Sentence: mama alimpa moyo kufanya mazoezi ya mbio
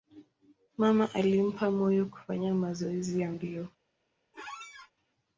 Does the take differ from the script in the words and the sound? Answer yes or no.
yes